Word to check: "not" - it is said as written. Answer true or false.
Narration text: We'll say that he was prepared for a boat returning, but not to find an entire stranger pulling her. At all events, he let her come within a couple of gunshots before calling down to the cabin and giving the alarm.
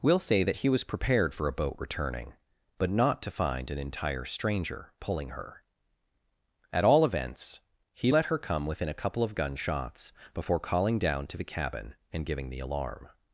true